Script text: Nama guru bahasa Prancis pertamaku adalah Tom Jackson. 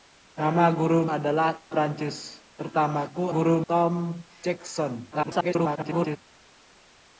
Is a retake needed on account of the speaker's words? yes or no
yes